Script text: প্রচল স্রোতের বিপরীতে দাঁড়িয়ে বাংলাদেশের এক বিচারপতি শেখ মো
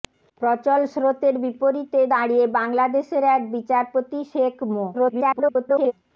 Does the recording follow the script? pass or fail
fail